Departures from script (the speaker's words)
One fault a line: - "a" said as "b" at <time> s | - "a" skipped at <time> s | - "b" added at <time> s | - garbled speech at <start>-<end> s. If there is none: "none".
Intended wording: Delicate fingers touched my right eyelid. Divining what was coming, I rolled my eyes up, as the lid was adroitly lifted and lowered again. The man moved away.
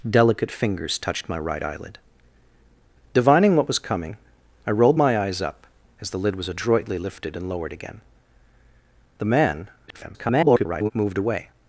- garbled speech at 9.9-10.9 s